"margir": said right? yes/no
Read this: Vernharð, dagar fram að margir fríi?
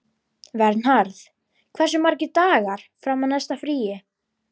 no